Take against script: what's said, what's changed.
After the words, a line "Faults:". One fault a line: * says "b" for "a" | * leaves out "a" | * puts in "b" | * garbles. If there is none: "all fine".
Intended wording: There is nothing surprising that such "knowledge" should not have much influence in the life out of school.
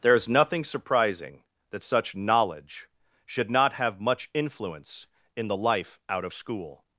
There is nothing surprising that such "knowledge" should not have much influence in the life out of school.
Faults:
all fine